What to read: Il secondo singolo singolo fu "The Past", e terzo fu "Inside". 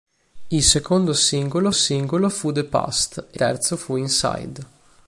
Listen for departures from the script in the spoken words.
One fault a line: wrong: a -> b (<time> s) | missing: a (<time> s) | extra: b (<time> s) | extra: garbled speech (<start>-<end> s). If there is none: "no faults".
no faults